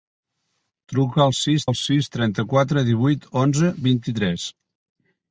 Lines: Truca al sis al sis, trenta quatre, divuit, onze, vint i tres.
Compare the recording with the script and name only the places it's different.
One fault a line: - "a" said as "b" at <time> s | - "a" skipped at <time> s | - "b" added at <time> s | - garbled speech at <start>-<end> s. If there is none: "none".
none